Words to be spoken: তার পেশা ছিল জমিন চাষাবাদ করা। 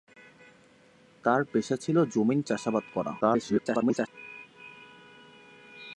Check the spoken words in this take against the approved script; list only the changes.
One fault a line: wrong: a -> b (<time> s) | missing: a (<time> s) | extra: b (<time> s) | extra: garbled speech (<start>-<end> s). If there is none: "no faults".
extra: garbled speech (3.2-4.1 s)